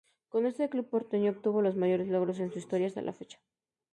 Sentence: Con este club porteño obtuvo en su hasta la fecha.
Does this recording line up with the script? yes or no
no